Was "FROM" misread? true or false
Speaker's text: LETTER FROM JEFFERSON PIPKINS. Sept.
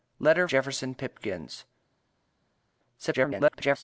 true